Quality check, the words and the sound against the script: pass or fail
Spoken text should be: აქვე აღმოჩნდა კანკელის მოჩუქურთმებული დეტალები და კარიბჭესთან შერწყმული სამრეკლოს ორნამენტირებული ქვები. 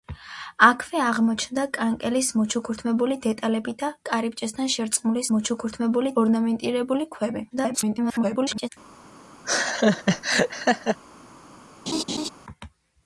fail